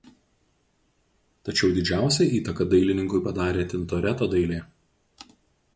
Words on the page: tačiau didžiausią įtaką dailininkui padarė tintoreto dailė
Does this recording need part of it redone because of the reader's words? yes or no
no